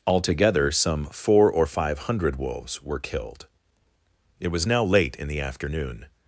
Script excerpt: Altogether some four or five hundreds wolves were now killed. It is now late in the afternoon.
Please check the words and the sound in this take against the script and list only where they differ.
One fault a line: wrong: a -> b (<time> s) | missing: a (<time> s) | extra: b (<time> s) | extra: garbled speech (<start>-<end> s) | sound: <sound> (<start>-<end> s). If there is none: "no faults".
wrong: hundreds -> hundred (2.0 s)
missing: now (3.0 s)
wrong: is -> was (4.5 s)